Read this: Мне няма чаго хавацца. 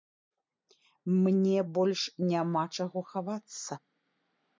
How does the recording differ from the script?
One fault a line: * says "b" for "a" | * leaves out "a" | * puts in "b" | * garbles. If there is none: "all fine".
* puts in "больш"